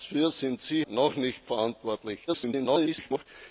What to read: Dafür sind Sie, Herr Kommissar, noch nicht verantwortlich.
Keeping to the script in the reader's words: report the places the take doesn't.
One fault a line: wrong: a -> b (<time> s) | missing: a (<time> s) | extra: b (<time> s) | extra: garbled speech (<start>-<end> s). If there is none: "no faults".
missing: Herr Kommissar (0.8 s)
extra: garbled speech (2.3-3.3 s)